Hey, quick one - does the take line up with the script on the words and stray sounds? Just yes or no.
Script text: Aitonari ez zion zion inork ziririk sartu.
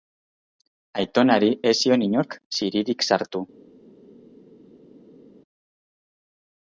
no